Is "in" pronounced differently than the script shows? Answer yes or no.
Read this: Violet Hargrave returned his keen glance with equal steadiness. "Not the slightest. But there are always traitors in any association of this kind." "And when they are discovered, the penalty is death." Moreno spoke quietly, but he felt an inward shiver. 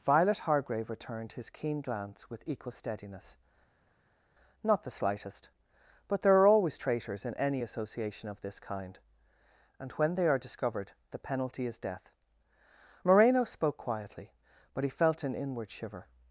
no